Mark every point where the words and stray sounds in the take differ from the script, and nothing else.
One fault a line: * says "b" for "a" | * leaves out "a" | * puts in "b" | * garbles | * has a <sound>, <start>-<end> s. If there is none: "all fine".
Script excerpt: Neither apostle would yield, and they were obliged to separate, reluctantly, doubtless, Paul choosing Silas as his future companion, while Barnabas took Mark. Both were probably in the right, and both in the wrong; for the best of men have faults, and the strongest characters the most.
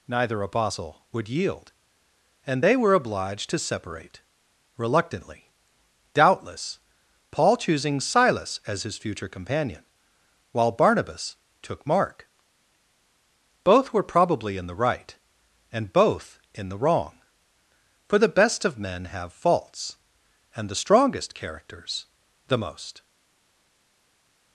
all fine